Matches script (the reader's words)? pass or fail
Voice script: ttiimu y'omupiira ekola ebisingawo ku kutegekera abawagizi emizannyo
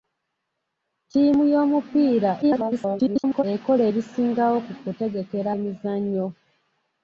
fail